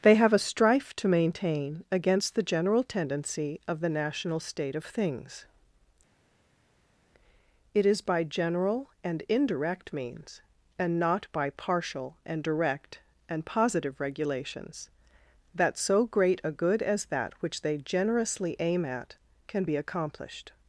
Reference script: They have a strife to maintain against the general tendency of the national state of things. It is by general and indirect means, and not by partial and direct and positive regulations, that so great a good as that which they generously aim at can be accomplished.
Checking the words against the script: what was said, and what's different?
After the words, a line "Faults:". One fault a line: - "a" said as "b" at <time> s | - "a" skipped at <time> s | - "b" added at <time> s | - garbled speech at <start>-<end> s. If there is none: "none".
They have a strife to maintain against the general tendency of the national state of things. It is by general and indirect means, and not by partial and direct and positive regulations, that so great a good as that which they generously aim at can be accomplished.
Faults:
none